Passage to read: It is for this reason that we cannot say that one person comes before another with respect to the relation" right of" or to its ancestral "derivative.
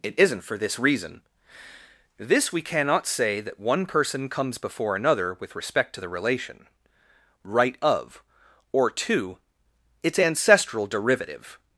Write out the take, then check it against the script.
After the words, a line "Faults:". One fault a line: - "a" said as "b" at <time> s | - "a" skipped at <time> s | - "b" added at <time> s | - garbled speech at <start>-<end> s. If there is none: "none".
It isn't for this reason this we cannot say that one person comes before another with respect to the relation" right of" or to its ancestral "derivative.
Faults:
- "is" said as "isn't" at 0.2 s
- "that" said as "this" at 2.2 s